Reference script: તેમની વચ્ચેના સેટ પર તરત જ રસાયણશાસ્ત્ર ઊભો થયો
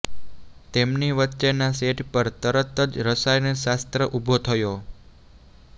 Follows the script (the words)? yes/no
yes